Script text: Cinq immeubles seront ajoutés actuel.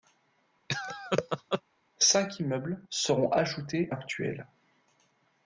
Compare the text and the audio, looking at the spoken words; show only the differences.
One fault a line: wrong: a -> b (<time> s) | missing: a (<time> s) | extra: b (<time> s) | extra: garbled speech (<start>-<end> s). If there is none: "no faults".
no faults